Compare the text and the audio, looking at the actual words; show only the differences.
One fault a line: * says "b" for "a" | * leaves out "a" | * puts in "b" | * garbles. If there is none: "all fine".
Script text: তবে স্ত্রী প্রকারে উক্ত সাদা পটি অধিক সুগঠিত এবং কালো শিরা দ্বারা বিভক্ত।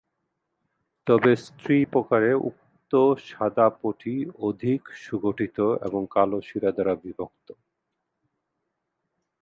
all fine